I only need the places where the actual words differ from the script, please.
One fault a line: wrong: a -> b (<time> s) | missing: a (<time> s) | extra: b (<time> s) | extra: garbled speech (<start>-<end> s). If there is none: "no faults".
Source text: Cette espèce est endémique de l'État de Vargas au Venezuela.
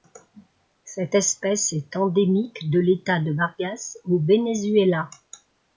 no faults